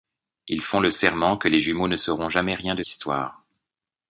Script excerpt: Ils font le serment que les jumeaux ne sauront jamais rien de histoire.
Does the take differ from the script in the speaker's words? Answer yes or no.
no